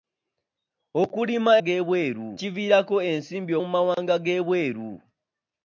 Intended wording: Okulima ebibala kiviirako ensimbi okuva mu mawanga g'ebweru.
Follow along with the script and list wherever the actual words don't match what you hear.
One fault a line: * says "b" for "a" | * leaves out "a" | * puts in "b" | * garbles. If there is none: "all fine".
* says "g'ebweru" for "ebibala"
* leaves out "okuva"